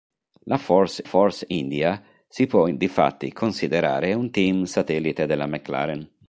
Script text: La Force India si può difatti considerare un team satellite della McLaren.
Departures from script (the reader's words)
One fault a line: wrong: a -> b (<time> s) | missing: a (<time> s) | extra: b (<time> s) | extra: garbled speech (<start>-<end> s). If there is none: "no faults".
extra: Force (1.0 s)